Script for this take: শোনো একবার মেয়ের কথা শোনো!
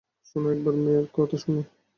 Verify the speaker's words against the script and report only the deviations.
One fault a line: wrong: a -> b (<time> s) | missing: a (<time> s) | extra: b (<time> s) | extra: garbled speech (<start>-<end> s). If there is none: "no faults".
no faults